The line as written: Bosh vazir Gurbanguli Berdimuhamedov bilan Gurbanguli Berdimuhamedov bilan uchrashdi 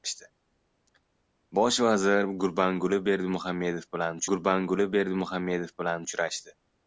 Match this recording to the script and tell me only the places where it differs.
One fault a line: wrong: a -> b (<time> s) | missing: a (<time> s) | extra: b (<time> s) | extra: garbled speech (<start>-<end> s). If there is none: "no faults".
no faults